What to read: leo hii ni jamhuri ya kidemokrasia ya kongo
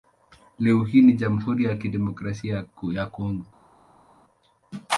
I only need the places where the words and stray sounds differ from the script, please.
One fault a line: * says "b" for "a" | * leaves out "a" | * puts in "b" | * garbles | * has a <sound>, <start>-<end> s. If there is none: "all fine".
all fine